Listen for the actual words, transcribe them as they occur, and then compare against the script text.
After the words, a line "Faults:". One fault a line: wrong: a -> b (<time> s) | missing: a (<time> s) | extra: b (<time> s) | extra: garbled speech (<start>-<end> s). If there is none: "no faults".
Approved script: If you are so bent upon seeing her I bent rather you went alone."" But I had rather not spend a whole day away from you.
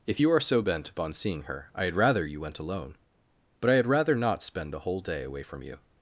If you are so bent upon seeing her I had rather you went alone."" But I had rather not spend a whole day away from you.
Faults:
wrong: bent -> had (1.9 s)